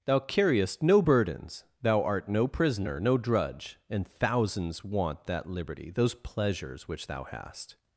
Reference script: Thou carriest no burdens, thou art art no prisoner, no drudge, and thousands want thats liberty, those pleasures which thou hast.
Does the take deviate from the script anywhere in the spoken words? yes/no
yes